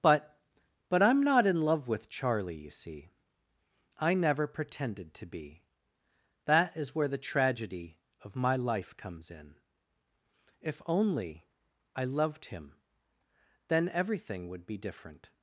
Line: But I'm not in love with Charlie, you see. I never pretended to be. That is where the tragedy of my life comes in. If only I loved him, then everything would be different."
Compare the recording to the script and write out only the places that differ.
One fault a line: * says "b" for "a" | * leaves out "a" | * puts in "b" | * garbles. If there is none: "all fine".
* puts in "but"